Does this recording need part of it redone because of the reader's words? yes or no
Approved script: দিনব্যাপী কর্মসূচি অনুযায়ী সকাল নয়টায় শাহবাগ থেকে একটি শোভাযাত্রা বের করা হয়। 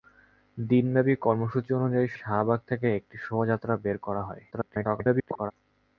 yes